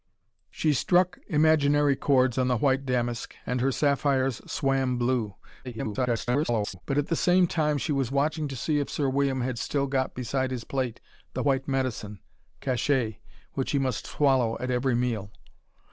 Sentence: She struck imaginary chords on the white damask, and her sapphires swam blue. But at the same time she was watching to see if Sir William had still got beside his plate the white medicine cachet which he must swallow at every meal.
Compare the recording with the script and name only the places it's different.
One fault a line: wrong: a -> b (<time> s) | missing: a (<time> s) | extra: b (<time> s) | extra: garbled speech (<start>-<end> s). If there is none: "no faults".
extra: garbled speech (5.6-6.8 s)